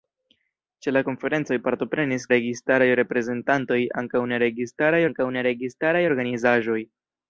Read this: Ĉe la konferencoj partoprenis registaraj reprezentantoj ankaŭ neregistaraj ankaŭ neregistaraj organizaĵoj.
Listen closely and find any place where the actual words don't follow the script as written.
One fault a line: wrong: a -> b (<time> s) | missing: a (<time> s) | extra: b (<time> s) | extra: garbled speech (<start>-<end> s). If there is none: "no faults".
no faults